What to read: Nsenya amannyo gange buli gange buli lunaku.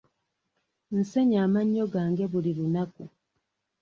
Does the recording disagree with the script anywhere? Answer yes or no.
yes